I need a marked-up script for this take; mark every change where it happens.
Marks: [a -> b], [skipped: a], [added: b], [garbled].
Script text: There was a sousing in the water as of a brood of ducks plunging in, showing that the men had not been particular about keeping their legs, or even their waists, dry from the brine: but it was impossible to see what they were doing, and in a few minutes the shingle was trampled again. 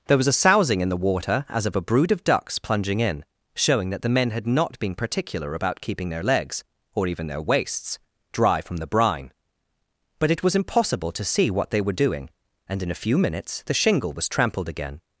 There was a sousing in the water as of a brood of ducks plunging in, showing that the men had not been particular about keeping their legs, or even their waists, dry from the brine: but it was impossible to see what they were doing, and in a few minutes the shingle was trampled again.